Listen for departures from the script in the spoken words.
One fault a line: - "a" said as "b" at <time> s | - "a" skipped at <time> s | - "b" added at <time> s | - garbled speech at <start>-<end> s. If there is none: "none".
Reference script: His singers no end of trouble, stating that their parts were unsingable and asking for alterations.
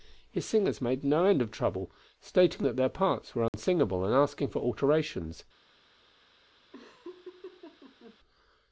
- "made" added at 0.8 s